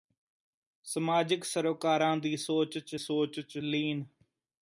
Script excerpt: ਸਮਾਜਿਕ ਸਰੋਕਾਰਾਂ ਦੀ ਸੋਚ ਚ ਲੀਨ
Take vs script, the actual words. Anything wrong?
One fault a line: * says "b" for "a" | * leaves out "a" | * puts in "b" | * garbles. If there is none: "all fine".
* puts in "ਸੋਚ ਚ"